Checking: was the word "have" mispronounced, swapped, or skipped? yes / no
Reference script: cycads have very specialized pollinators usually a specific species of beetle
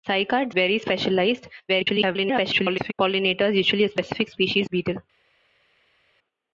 yes